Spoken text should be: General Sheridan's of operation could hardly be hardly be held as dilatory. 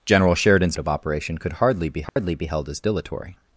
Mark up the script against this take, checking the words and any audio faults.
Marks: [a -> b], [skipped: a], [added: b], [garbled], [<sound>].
General Sheridan's of operation could hardly be hardly [dropout] be held as dilatory.